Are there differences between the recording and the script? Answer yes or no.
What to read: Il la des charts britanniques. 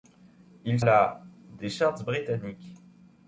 no